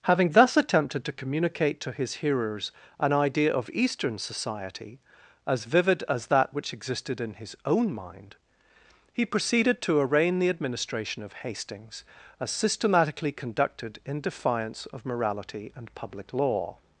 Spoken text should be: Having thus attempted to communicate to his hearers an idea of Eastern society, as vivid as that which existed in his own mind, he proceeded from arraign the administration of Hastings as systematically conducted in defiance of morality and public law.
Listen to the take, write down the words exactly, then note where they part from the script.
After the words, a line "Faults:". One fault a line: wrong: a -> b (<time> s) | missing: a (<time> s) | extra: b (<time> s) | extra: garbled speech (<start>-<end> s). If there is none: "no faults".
Having thus attempted to communicate to his hearers an idea of Eastern society, as vivid as that which existed in his own mind, he proceeded to arraign the administration of Hastings as systematically conducted in defiance of morality and public law.
Faults:
wrong: from -> to (9.8 s)